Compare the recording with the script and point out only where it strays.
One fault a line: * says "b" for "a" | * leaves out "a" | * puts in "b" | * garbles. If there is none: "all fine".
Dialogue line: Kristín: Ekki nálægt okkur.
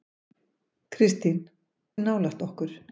* leaves out "Ekki"